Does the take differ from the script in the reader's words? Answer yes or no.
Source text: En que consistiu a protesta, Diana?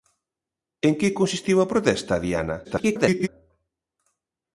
yes